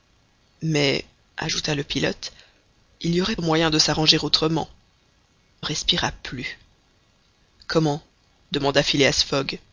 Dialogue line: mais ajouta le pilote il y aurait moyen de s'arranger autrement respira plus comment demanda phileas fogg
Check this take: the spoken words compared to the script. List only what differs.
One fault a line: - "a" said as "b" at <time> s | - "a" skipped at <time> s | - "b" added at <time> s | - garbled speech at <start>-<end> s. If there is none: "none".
none